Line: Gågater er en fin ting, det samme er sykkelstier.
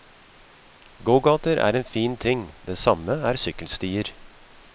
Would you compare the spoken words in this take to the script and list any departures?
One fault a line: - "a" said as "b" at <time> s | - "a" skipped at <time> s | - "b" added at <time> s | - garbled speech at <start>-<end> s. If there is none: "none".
none